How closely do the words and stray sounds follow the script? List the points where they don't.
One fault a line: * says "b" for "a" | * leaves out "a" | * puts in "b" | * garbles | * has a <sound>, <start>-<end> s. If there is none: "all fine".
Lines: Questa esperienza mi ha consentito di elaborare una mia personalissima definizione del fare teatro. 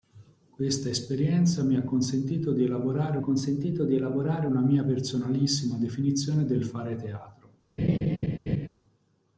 * puts in "consentito di elaborare"
* has a laugh, 7.8-8.7 s